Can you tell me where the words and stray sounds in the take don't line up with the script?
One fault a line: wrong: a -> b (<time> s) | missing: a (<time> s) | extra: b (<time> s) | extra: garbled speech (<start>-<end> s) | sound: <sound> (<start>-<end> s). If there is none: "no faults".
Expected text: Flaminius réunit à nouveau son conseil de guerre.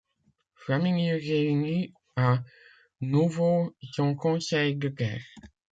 no faults